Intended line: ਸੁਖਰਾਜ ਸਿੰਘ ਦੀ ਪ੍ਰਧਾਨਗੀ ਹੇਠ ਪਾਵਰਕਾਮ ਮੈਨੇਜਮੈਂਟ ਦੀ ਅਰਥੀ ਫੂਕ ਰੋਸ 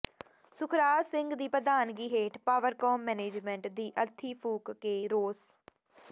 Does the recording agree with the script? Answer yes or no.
no